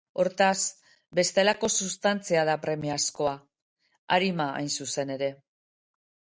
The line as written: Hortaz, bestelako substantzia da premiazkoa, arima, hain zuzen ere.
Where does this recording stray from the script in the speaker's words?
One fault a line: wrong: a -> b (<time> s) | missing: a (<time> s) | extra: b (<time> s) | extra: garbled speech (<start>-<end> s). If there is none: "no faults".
no faults